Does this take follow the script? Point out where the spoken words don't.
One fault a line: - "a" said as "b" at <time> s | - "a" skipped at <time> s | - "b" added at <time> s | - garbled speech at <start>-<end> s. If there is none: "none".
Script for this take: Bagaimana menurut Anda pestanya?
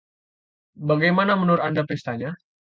none